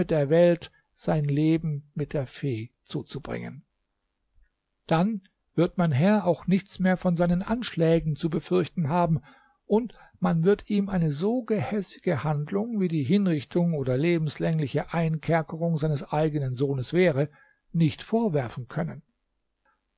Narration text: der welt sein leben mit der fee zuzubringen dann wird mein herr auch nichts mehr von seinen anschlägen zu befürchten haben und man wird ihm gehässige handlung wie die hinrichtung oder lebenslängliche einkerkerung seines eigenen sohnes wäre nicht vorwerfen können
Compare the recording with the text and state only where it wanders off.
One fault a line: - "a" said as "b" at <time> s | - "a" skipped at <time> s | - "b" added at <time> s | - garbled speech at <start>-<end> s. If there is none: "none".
- "eine so" added at 10.9 s